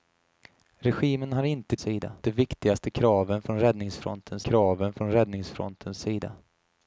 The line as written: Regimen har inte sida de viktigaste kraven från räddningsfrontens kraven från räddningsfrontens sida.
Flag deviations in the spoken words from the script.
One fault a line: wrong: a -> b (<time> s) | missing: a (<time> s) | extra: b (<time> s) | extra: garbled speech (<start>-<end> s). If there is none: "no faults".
no faults